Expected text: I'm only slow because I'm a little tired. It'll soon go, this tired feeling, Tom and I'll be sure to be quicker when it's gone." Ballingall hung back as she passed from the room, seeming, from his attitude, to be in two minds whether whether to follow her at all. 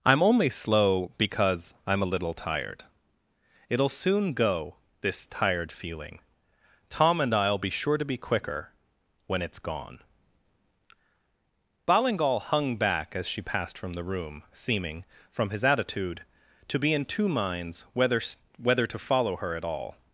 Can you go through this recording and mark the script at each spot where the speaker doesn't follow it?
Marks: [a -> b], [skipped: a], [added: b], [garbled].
I'm only slow because I'm a little tired. It'll soon go, this tired feeling, Tom and I'll be sure to be quicker when it's gone." Ballingall hung back as she passed from the room, seeming, from his attitude, to be in two minds whether whether to follow her at all.